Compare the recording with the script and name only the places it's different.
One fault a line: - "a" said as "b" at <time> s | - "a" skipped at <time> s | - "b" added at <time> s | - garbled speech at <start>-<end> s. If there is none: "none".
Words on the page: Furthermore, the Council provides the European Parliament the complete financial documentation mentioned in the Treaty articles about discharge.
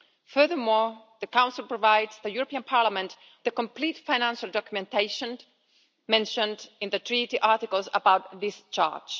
none